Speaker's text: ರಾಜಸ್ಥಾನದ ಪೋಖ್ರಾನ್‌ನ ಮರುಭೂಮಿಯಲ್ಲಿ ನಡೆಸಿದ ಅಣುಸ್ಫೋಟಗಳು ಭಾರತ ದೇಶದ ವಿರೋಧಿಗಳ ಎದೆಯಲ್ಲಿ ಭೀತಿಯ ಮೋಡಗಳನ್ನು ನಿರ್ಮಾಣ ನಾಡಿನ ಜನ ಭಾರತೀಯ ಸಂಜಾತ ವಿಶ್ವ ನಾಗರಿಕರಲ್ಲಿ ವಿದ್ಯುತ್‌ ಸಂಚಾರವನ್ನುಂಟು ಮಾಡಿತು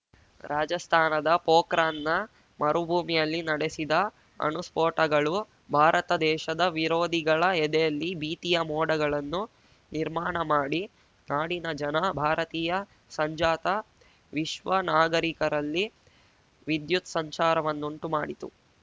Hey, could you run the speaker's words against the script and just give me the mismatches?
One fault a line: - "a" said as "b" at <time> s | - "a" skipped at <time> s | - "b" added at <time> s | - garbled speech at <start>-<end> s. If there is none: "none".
- "ಮಾಡಿ" added at 10.5 s